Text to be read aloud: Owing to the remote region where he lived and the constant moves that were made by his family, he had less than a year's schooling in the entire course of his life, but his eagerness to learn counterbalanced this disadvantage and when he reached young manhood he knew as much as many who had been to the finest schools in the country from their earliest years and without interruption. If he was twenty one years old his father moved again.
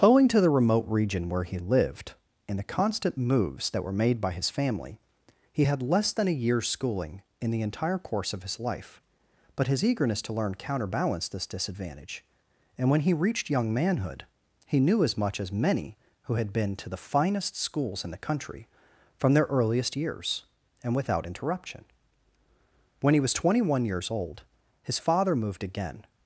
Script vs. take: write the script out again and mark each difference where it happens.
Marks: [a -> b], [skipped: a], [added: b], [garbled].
Owing to the remote region where he lived and the constant moves that were made by his family, he had less than a year's schooling in the entire course of his life, but his eagerness to learn counterbalanced this disadvantage and when he reached young manhood he knew as much as many who had been to the finest schools in the country from their earliest years and without interruption. [If -> When] he was twenty one years old his father moved again.